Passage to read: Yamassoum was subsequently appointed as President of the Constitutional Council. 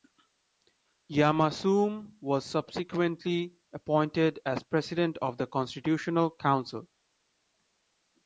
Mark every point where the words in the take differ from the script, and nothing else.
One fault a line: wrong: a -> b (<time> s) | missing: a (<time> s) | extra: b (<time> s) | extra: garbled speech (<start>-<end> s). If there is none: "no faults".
no faults